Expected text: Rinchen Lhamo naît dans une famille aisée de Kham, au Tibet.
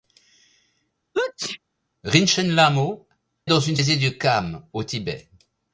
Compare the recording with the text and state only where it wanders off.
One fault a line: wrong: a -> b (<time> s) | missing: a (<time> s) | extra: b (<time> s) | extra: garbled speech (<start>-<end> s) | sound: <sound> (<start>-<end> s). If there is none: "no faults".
sound: sneeze (1.1-1.6 s)
missing: naît (3.1 s)
missing: famille (3.8 s)